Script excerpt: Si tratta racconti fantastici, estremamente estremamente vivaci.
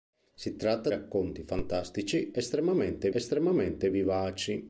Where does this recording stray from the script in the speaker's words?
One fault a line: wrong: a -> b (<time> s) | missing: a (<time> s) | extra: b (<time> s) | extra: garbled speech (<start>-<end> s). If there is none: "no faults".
no faults